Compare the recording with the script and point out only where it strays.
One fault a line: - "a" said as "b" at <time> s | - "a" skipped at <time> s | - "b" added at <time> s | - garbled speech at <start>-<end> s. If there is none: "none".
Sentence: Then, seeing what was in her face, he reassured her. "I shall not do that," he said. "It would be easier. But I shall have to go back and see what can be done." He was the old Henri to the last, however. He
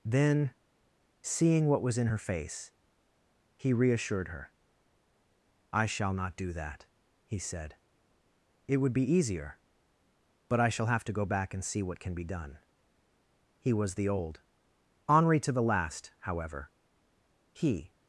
none